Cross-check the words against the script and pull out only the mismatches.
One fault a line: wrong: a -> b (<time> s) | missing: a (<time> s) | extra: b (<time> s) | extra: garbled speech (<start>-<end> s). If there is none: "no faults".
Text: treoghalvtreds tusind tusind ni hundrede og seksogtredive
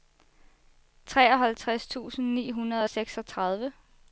missing: tusind (2.3 s)